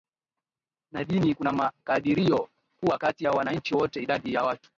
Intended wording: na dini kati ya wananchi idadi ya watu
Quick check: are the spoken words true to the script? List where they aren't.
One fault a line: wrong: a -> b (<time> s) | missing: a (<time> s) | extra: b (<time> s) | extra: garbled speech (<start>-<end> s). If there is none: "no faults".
extra: kuna makadirio kuwa (1.3 s)
extra: wote (3.7 s)